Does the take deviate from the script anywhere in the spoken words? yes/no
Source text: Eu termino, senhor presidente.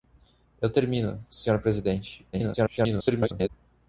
yes